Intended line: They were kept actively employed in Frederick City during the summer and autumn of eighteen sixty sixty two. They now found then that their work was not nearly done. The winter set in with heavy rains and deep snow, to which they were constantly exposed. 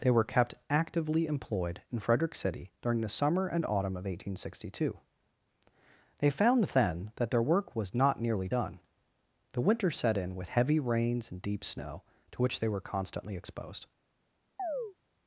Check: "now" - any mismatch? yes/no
yes